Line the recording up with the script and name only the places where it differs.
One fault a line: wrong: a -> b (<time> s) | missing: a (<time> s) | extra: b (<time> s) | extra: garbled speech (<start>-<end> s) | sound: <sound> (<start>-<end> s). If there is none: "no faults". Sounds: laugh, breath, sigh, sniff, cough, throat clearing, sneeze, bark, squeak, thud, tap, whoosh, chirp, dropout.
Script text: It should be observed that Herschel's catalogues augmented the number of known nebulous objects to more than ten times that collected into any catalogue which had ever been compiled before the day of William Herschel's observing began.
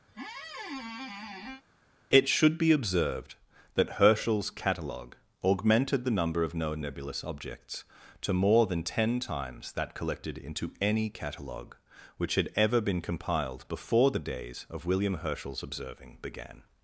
sound: squeak (0.1-1.6 s)
wrong: catalogues -> catalogue (4.5 s)
wrong: day -> days (14.3 s)